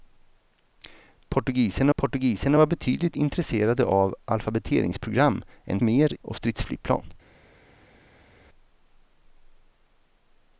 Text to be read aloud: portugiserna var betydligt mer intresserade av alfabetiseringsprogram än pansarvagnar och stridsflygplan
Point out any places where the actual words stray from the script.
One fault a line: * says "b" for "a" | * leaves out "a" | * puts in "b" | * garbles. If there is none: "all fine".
* puts in "portugiserna"
* leaves out "mer"
* says "mer" for "pansarvagnar"